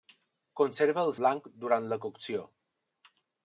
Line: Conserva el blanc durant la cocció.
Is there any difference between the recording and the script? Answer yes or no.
no